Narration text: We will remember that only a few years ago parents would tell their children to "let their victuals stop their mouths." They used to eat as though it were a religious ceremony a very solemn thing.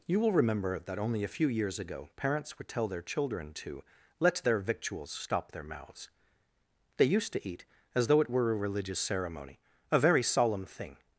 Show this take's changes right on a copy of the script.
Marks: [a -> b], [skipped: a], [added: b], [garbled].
[We -> You] will remember that only a few years ago parents would tell their children to "let their victuals stop their mouths." They used to eat as though it were a religious ceremony a very solemn thing.